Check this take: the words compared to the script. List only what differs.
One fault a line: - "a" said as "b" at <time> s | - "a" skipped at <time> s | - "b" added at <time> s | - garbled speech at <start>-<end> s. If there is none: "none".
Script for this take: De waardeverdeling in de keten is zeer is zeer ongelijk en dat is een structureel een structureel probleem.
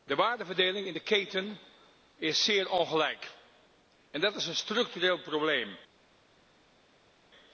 - "is zeer" skipped at 2.7 s
- "een structureel" skipped at 5.2 s